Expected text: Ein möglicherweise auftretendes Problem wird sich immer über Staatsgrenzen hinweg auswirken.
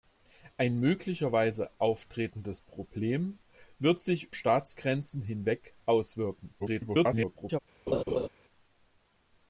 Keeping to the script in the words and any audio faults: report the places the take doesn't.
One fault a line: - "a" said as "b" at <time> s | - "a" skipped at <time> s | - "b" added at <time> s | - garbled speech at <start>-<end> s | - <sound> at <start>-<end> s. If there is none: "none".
- "immer über" skipped at 4.3 s
- garbled speech at 6.6-7.6 s
- laugh at 7.9-8.3 s